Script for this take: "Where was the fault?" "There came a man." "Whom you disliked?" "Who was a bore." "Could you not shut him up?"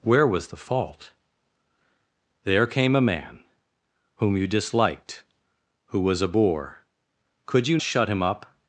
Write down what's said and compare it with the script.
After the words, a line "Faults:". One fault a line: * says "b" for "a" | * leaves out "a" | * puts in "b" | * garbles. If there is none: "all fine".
"Where was the fault?" "There came a man." "Whom you disliked?" "Who was a bore." "Could you shut him up?"
Faults:
* leaves out "not"